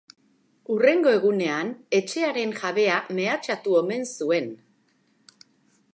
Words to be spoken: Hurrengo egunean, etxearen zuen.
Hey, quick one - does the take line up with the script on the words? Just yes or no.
no